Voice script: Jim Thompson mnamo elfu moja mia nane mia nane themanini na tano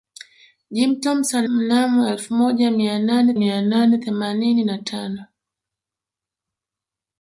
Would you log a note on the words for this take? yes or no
no